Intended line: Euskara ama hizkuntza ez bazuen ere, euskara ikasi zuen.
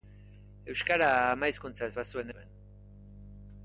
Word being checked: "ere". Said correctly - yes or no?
no